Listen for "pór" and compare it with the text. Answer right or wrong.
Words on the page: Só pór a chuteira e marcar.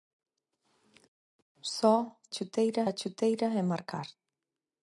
wrong